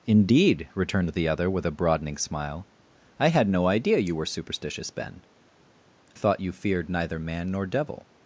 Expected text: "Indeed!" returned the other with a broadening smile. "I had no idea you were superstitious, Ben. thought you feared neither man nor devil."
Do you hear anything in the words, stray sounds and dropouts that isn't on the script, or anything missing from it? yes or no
no